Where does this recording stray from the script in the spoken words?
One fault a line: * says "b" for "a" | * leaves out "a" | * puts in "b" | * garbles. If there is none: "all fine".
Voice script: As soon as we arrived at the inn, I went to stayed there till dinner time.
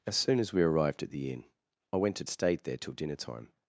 all fine